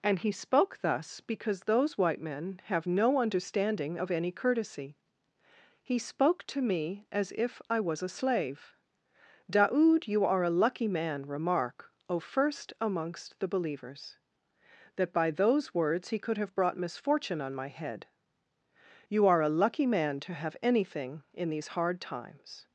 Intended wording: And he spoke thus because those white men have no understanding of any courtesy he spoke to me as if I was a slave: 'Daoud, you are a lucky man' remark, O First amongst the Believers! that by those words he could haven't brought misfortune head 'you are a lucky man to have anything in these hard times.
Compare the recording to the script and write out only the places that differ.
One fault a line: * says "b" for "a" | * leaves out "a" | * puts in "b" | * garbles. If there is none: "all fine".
* says "have" for "haven't"
* puts in "on my"